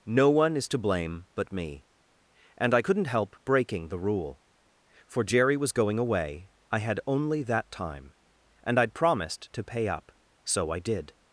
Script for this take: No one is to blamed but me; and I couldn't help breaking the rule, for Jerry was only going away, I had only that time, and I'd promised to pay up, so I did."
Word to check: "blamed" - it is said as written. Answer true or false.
false